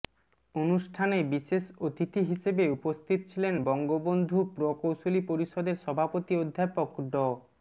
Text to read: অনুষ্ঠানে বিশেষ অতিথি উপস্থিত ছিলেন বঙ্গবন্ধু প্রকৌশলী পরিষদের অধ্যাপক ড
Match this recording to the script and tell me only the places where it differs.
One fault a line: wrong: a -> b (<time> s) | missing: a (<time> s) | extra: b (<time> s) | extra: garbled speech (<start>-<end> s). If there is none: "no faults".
extra: হিসেবে (2.3 s)
extra: সভাপতি (5.8 s)